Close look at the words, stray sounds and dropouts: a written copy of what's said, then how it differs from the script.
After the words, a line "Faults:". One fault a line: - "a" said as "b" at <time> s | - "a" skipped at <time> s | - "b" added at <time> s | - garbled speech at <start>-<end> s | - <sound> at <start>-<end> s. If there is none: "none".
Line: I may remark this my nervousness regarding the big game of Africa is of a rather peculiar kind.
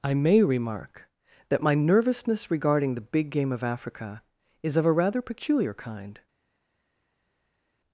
I may remark that my nervousness regarding the big game of Africa is of a rather peculiar kind.
Faults:
- "this" said as "that" at 1.5 s